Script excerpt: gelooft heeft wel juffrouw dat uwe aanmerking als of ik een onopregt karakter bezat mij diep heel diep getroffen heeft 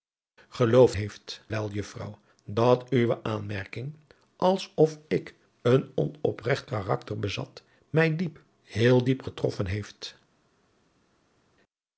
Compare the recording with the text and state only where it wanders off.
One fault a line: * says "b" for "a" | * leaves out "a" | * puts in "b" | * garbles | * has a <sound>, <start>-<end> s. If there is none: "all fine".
all fine